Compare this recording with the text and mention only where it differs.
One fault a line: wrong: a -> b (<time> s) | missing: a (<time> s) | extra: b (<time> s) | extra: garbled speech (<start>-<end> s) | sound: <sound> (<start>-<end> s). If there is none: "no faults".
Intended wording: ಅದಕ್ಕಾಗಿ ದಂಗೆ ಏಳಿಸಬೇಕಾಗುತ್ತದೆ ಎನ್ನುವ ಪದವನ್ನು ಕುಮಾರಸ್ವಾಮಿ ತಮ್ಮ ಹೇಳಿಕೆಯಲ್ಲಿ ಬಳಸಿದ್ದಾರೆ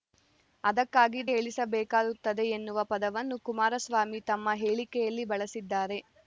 missing: ದಂಗೆ (1.2 s)